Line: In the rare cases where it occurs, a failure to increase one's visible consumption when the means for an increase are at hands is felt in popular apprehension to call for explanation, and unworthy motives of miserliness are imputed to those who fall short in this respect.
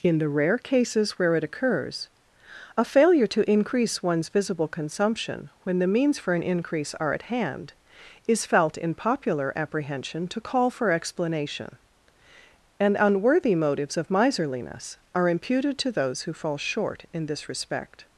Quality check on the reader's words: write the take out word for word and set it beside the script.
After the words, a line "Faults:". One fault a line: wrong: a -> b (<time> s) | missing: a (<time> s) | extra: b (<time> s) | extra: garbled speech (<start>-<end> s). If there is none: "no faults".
In the rare cases where it occurs, a failure to increase one's visible consumption when the means for an increase are at hand is felt in popular apprehension to call for explanation, and unworthy motives of miserliness are imputed to those who fall short in this respect.
Faults:
wrong: hands -> hand (7.2 s)